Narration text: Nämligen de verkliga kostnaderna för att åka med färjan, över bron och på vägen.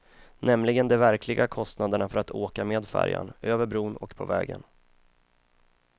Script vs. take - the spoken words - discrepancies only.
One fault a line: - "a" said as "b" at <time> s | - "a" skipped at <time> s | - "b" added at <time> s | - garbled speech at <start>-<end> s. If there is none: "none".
none